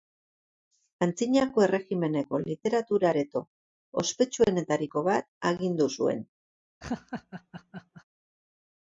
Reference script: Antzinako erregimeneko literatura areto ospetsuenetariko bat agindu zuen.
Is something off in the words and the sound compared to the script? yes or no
yes